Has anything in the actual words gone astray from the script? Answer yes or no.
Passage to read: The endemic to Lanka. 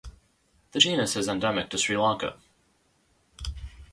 yes